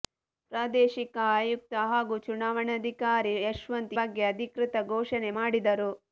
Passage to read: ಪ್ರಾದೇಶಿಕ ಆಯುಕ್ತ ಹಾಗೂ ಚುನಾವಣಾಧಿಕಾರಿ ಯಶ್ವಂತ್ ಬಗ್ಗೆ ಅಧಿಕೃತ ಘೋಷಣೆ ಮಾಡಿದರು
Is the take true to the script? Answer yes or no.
yes